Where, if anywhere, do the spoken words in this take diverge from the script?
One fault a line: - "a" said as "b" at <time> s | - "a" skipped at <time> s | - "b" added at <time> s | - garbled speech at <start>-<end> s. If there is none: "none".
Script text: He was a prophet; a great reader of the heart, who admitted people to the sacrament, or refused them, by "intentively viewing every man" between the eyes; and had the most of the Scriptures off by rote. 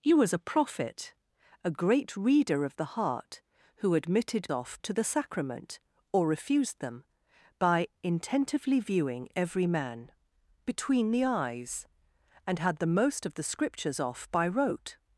- "people" said as "off" at 4.5 s